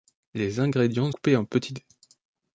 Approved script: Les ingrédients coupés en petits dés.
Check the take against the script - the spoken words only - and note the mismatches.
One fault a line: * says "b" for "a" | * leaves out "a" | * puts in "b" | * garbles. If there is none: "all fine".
all fine